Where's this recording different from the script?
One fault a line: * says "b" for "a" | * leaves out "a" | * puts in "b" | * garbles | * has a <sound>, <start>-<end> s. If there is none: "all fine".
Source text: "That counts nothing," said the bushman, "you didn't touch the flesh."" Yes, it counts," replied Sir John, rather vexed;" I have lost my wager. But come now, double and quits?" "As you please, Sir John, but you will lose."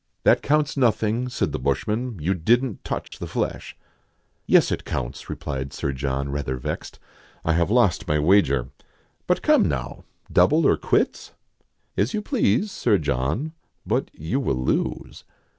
* has a dropout, 3.1-3.1 s
* says "or" for "and"